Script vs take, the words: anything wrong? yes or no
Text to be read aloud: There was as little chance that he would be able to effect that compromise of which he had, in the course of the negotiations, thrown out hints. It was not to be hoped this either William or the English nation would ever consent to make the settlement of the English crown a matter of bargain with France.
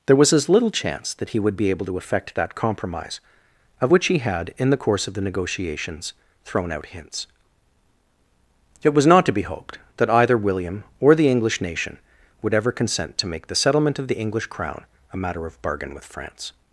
yes